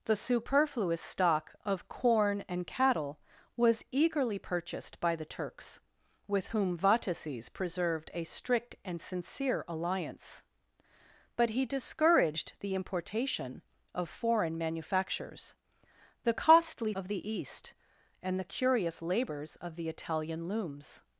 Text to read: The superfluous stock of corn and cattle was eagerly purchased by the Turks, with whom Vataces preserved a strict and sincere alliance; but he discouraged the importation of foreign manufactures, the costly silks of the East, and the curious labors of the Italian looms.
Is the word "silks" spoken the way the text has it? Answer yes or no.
no